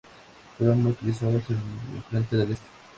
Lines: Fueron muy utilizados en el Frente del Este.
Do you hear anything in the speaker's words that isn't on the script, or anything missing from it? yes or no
no